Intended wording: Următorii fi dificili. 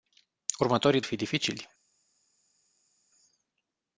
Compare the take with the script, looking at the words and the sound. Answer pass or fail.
pass